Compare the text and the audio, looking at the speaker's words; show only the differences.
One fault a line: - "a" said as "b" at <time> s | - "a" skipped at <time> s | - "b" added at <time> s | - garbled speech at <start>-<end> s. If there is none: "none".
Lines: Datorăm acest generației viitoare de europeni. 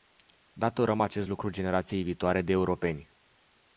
- "lucru" added at 1.3 s